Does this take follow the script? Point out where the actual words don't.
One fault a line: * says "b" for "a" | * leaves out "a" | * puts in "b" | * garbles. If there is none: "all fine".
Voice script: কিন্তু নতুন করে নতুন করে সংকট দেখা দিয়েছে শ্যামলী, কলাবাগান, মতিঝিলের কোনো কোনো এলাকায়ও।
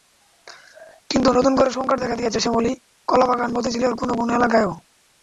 * leaves out "নতুন করে"